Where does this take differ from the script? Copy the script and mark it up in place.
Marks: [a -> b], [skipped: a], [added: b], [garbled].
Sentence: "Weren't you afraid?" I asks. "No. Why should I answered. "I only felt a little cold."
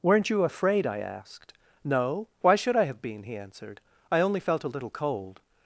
"Weren't you afraid?" I [asks. -> asked] "No. Why should I [added: have been he] answered. "I only felt a little cold."